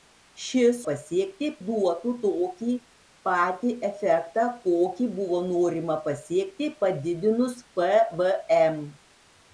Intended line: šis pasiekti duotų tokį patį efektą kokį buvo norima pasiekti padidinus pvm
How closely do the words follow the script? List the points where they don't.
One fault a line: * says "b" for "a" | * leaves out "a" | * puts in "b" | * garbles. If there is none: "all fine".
all fine